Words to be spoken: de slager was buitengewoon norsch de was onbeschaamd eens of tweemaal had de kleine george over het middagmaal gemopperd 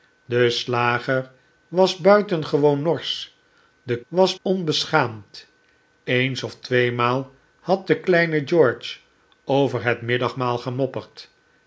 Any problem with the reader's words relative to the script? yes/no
no